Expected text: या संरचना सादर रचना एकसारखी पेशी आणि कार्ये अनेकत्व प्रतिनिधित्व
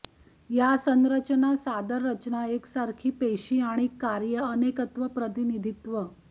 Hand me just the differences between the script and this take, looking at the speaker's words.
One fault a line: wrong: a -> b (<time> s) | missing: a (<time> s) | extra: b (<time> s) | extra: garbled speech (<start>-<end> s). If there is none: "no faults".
no faults